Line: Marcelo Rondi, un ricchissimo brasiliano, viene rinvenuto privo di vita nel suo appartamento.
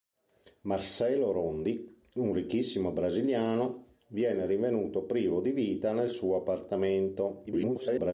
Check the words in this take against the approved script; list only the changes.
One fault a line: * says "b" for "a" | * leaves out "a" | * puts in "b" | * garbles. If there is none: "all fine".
* garbles